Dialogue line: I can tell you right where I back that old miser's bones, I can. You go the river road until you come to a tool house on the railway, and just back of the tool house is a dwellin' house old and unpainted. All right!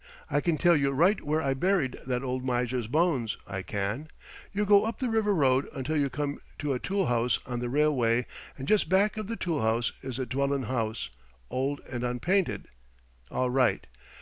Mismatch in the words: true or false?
true